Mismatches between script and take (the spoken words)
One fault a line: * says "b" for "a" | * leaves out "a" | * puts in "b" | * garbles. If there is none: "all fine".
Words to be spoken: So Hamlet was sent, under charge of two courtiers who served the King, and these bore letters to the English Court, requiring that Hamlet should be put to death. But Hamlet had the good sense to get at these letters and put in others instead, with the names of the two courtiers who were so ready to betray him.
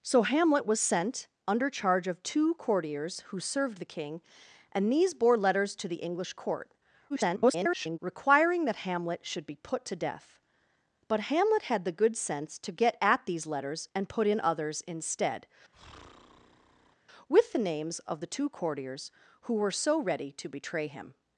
* garbles